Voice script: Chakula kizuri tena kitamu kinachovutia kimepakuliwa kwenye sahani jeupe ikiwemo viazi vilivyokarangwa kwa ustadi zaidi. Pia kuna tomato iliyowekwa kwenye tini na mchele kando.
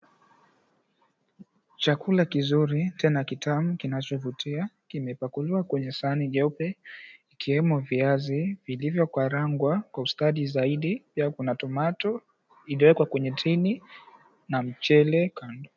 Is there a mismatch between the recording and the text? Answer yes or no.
no